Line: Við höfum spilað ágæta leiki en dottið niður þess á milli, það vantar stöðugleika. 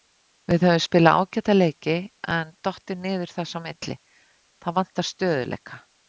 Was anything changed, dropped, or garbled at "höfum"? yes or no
no